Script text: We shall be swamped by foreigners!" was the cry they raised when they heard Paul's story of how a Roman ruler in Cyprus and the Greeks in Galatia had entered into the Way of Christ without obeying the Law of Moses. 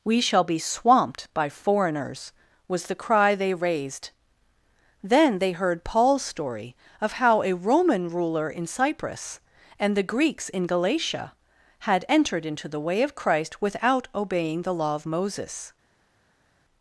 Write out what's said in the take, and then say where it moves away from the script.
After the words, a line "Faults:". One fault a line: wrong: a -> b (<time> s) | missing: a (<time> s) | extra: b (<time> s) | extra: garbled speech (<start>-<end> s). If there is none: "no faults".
We shall be swamped by foreigners!" was the cry they raised then they heard Paul's story of how a Roman ruler in Cyprus and the Greeks in Galatia had entered into the Way of Christ without obeying the Law of Moses.
Faults:
wrong: when -> then (5.0 s)